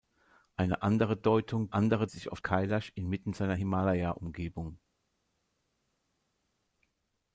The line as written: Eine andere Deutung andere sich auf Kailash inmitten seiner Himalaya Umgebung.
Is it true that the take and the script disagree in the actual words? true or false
false